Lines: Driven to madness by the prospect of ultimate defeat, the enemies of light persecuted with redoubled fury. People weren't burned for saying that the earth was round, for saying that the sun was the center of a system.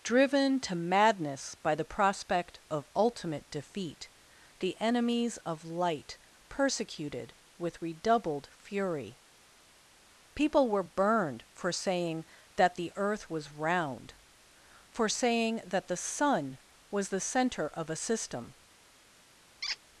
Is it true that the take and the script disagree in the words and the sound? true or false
true